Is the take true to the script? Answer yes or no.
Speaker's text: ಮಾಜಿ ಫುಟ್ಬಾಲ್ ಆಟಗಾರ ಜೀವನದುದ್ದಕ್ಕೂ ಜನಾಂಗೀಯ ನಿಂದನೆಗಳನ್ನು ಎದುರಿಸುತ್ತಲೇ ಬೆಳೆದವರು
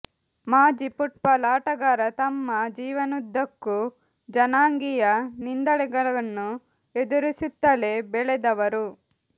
no